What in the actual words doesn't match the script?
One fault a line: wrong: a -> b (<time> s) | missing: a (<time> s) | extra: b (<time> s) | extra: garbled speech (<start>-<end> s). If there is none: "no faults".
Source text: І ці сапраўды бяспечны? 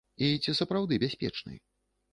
no faults